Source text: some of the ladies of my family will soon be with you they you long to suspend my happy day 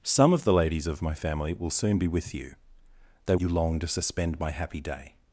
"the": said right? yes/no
yes